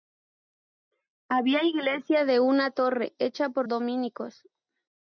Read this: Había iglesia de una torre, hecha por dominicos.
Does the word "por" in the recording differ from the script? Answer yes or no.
no